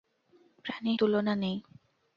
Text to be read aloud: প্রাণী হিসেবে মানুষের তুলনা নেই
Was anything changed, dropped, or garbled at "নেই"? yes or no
no